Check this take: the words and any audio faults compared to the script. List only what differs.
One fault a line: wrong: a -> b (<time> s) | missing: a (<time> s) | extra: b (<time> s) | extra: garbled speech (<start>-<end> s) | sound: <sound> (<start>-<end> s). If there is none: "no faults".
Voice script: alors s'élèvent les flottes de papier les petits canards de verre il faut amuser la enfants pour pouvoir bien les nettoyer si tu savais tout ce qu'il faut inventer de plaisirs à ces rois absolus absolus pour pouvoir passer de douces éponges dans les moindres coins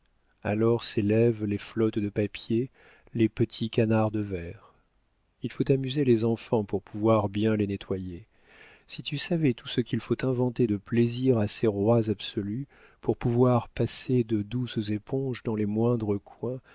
wrong: la -> les (6.0 s)
missing: absolus (12.7 s)